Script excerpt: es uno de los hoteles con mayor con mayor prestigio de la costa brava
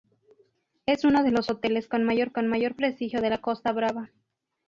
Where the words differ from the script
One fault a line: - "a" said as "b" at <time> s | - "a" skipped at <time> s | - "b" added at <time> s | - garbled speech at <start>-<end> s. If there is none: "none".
none